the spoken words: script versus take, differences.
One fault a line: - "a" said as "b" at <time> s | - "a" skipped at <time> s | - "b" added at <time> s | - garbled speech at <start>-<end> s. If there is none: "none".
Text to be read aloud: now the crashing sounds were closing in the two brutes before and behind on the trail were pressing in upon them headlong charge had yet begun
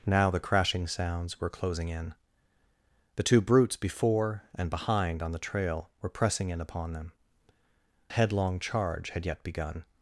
none